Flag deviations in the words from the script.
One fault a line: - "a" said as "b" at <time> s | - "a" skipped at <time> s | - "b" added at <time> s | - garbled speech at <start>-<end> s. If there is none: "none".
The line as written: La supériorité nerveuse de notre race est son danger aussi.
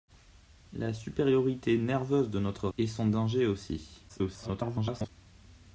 - "race" skipped at 2.7 s
- garbled speech at 4.1-5.1 s